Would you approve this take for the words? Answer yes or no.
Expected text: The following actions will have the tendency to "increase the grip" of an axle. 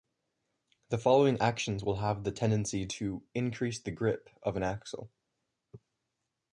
yes